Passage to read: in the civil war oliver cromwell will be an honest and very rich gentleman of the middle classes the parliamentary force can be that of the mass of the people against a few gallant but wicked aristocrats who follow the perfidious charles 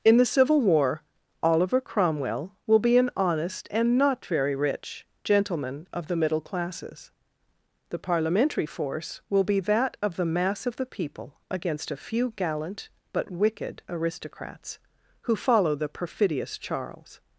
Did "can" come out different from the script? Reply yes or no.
yes